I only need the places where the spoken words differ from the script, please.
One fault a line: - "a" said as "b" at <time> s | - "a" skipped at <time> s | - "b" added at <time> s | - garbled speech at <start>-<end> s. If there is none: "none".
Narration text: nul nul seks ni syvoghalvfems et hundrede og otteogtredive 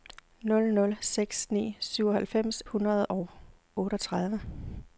- "et" skipped at 2.6 s